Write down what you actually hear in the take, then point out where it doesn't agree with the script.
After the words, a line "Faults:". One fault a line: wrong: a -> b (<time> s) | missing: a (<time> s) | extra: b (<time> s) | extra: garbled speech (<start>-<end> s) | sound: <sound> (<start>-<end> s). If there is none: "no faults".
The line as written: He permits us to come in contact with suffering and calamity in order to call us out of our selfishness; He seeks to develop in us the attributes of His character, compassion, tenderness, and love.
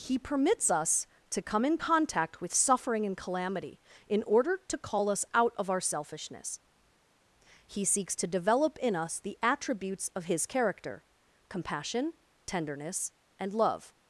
He permits us to come in contact with suffering and calamity in order to call us out of our selfishness; He seeks to develop in us the attributes of His character, compassion, tenderness, and love.
Faults:
no faults